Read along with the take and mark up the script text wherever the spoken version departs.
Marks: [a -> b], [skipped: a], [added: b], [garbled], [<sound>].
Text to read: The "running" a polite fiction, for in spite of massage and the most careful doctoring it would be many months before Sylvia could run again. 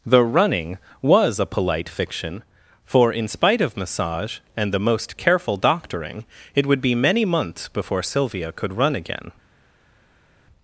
The "running" [added: was] a polite fiction, for in spite of massage and the most careful doctoring it would be many months before Sylvia could run again.